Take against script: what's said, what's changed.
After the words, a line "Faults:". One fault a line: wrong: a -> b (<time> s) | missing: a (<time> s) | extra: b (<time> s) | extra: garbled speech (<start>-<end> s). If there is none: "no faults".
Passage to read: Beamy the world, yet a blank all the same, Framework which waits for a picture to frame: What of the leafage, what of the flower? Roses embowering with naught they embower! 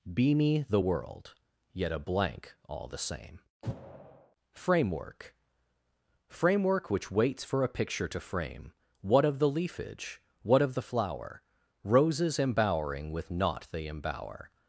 Beamy the world, yet a blank all the same, Framework Framework which waits for a picture to frame: What of the leafage, what of the flower? Roses embowering with naught they embower!
Faults:
extra: Framework (6.3 s)